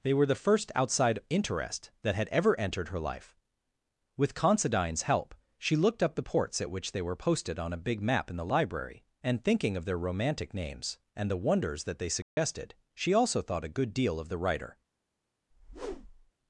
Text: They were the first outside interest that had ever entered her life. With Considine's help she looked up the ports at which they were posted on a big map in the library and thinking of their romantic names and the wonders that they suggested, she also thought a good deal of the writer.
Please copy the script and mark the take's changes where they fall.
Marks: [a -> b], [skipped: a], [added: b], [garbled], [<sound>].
They were the first outside interest that had ever entered her life. With Considine's help she looked up the ports at which they were posted on a big map in the library and thinking of their romantic names and the wonders that they suggested, [dropout] she also thought a good deal of the writer. [whoosh]